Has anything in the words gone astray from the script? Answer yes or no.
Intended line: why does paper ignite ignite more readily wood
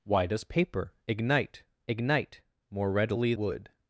no